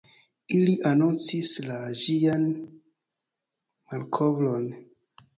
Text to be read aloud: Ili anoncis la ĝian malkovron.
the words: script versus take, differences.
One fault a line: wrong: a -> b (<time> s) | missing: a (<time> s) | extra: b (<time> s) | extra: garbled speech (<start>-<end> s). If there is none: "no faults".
no faults